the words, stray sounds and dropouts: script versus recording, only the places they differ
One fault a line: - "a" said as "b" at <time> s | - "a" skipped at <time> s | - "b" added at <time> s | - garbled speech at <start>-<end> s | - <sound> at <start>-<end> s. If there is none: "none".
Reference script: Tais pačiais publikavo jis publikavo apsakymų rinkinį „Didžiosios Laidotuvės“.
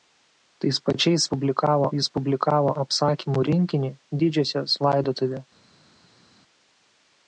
none